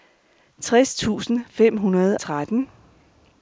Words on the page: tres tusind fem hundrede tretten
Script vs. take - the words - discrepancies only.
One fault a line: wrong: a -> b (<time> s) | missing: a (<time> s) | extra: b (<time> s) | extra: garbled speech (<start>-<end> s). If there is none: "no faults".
no faults